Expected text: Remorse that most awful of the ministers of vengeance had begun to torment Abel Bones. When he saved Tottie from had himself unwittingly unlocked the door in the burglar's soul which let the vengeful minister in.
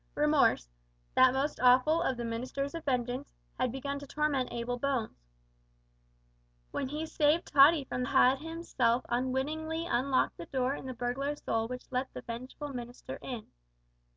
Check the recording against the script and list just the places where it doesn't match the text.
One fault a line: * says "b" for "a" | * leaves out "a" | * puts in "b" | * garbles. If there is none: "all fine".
all fine